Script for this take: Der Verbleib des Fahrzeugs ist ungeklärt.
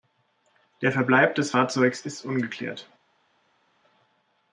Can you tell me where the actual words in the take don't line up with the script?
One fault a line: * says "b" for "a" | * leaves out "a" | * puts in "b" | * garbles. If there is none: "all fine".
all fine